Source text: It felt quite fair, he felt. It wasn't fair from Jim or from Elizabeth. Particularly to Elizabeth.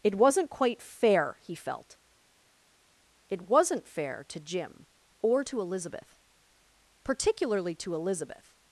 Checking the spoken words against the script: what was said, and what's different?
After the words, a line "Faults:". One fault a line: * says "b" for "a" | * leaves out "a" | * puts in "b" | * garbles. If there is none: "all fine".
It wasn't quite fair, he felt. It wasn't fair to Jim or to Elizabeth. Particularly to Elizabeth.
Faults:
* says "wasn't" for "felt"
* says "to" for "from"
* says "to" for "from"